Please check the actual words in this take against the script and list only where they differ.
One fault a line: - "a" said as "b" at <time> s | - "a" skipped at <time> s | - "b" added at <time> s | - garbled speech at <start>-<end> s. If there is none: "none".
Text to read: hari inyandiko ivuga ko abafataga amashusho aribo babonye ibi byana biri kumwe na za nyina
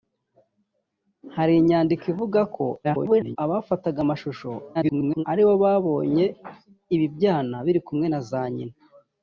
- garbled speech at 2.8-3.4 s
- garbled speech at 4.7-5.2 s